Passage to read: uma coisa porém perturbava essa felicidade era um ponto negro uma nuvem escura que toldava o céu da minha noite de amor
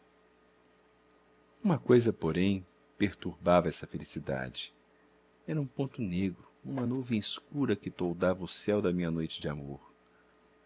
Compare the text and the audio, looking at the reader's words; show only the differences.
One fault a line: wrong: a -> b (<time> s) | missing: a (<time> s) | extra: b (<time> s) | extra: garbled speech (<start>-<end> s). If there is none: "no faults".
no faults